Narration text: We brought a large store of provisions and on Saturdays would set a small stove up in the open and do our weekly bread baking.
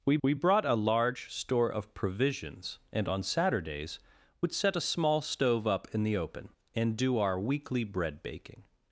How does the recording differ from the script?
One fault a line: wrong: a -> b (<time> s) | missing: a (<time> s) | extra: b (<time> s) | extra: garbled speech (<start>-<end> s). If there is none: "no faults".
extra: we (0.2 s)